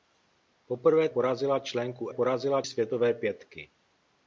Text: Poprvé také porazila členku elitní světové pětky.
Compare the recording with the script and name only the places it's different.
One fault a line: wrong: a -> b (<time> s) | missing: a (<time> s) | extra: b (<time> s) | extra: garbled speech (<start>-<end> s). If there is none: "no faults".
missing: také (1.1 s)
wrong: elitní -> porazila (2.1 s)